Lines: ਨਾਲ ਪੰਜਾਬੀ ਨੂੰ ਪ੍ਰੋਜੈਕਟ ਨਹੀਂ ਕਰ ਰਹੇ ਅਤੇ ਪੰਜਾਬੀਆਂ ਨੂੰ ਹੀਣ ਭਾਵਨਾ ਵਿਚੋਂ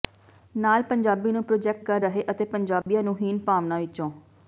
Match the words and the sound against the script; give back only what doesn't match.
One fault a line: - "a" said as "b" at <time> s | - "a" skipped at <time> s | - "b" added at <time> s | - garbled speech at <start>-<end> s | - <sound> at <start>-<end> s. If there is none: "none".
- "ਨਹੀਂ" skipped at 1.9 s
- dropout at 2.8-2.9 s